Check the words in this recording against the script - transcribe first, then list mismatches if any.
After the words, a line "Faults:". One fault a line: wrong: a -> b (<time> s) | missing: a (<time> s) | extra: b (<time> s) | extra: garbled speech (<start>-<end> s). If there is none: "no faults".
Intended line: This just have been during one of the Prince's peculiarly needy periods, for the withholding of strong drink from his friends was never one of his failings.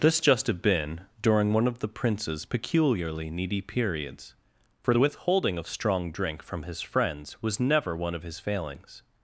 This just have been during one of the Prince's peculiarly needy periods, for the withholding of strong drink from his friends was never one of his failings.
Faults:
no faults